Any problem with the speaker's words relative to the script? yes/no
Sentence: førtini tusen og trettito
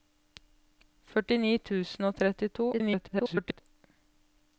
yes